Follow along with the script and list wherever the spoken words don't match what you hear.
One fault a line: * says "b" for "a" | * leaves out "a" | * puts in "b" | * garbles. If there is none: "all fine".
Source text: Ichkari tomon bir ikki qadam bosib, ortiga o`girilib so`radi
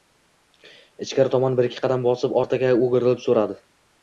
all fine